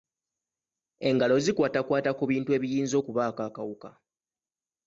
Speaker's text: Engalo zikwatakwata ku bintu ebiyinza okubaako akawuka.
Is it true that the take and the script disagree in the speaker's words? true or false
false